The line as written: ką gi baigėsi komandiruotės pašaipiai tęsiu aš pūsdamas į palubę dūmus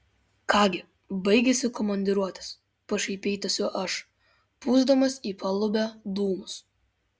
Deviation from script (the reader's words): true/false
false